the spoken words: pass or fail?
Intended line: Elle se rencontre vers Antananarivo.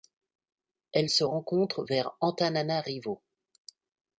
pass